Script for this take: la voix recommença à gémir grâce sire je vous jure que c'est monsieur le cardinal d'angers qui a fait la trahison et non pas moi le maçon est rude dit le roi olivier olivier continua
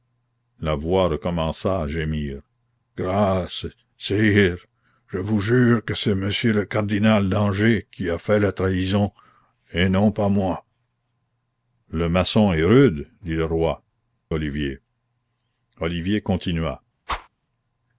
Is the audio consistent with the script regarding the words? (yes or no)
yes